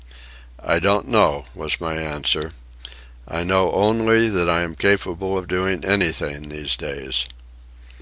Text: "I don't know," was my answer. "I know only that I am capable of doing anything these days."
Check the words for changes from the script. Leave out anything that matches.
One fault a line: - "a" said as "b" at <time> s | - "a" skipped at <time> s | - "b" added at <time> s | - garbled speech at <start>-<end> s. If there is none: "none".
none